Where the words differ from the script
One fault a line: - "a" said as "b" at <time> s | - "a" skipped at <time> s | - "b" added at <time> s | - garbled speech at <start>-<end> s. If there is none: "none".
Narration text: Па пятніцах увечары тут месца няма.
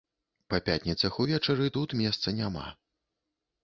none